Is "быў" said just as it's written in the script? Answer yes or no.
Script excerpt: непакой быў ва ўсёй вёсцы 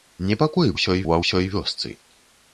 no